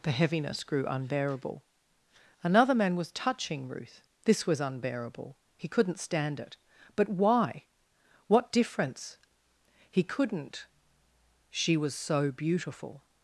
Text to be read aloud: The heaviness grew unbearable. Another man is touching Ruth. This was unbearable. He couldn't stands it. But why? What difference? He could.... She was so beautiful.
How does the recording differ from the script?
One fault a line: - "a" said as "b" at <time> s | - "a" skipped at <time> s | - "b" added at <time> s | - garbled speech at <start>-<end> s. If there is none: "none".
- "is" said as "was" at 3.0 s
- "stands" said as "stand" at 6.0 s
- "could" said as "couldn't" at 10.0 s